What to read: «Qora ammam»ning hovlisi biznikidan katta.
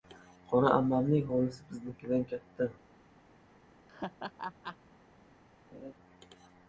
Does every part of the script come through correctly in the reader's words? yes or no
yes